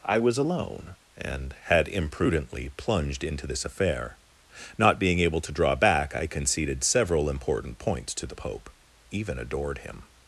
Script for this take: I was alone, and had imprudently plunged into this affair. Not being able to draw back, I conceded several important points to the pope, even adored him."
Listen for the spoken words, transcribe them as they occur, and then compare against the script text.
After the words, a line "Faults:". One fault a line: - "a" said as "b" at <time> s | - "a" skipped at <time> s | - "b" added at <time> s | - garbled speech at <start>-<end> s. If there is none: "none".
I was alone, and had imprudently plunged into this affair. Not being able to draw back, I conceded several important points to the pope, even adored him."
Faults:
none